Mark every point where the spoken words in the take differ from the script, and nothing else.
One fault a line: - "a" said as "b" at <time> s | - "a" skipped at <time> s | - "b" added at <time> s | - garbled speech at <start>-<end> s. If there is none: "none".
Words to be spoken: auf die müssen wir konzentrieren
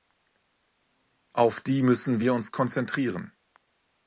- "uns" added at 2.3 s